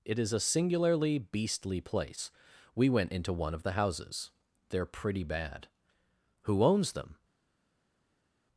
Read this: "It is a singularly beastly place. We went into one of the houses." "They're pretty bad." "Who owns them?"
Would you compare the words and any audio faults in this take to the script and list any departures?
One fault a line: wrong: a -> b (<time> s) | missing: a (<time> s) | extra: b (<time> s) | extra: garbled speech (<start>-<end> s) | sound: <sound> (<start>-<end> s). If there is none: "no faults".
no faults